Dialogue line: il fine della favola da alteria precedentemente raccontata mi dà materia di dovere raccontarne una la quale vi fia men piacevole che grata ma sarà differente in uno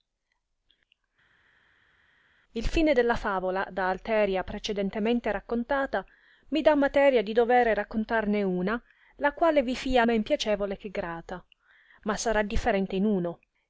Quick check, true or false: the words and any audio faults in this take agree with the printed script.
true